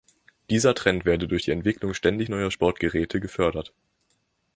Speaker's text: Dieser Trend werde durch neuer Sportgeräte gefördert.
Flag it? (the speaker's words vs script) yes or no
yes